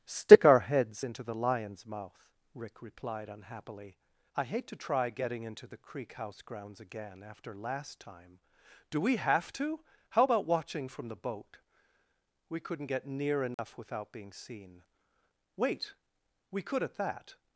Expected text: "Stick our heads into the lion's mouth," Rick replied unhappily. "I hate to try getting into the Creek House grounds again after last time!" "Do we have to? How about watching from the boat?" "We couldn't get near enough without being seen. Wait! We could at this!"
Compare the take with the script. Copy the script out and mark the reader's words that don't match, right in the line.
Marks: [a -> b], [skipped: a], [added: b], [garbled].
"Stick our heads into the lion's mouth," Rick replied unhappily. "I hate to try getting into the Creek House grounds again after last time!" "Do we have to? How about watching from the boat?" "We couldn't get near enough without being seen. Wait! We could at [this!" -> that]